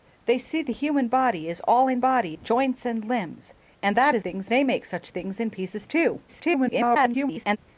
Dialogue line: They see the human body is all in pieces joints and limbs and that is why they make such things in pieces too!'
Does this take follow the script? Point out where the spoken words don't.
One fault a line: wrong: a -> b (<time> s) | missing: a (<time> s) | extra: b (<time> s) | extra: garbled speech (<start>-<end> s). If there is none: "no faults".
wrong: pieces -> body (2.0 s)
wrong: why -> things (4.2 s)
extra: garbled speech (6.3-7.6 s)